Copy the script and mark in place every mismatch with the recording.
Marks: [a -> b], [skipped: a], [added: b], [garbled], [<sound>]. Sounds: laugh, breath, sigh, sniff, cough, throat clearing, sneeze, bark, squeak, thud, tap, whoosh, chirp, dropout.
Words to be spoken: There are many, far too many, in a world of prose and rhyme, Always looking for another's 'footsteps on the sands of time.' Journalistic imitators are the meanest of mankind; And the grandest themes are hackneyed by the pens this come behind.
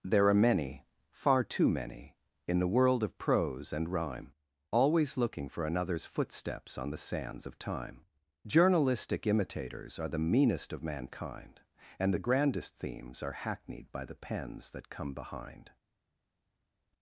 There are many, far too many, in [a -> the] world of prose and rhyme, Always looking for another's 'footsteps on the sands of time.' Journalistic imitators are the meanest of mankind; And the grandest themes are hackneyed by the pens [this -> that] come behind.